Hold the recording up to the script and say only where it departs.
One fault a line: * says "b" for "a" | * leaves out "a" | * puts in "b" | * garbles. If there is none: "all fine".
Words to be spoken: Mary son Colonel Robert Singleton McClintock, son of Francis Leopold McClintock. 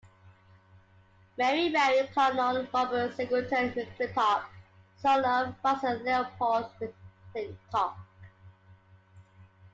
* says "married" for "son"